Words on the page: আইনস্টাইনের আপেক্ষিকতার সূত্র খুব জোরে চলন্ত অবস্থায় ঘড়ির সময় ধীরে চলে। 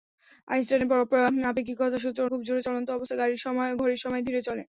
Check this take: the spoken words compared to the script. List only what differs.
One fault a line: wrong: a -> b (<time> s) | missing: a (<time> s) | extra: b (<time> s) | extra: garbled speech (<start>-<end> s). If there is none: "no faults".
no faults